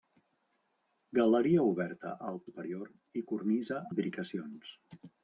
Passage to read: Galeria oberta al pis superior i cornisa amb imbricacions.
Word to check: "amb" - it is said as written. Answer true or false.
false